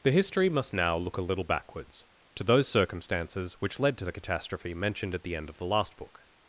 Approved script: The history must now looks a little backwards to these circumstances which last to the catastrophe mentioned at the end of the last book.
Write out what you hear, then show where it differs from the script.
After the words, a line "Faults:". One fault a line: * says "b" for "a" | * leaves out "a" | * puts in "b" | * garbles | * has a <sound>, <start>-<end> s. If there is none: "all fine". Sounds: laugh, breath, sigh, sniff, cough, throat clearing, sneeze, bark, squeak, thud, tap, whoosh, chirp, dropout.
The history must now look a little backwards to those circumstances which led to the catastrophe mentioned at the end of the last book.
Faults:
* says "look" for "looks"
* says "those" for "these"
* says "led" for "last"